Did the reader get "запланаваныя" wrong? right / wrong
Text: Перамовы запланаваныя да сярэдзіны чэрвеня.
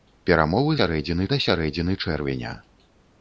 wrong